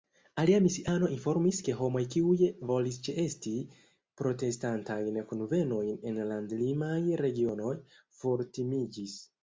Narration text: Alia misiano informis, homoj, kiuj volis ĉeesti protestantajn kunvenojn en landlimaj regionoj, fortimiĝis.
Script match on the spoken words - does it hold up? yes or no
no